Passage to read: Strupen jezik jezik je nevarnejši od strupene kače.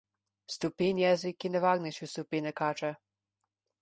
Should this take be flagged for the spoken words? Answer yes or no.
yes